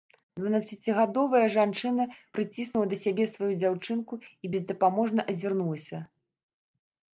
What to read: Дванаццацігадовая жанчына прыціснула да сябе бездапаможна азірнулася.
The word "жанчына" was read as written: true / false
true